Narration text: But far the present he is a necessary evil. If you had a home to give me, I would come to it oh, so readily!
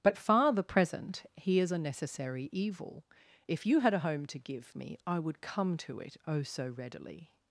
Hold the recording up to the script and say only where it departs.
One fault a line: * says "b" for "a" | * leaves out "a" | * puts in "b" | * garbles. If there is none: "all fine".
all fine